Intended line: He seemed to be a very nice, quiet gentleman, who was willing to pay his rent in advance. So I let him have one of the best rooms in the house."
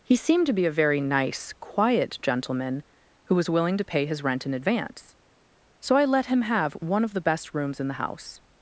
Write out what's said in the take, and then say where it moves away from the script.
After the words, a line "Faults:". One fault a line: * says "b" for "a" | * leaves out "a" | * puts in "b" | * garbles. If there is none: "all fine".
He seemed to be a very nice, quiet gentleman, who was willing to pay his rent in advance. So I let him have one of the best rooms in the house."
Faults:
all fine